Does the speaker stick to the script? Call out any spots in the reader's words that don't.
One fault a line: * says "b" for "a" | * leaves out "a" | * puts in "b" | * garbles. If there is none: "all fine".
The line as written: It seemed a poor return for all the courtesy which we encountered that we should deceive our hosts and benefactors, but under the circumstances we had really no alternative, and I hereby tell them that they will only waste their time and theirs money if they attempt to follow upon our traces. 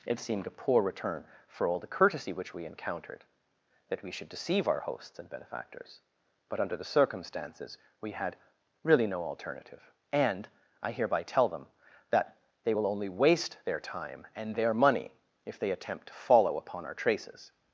* says "their" for "theirs"